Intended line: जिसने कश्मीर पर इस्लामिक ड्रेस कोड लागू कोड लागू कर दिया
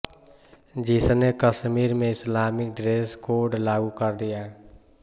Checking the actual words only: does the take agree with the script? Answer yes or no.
no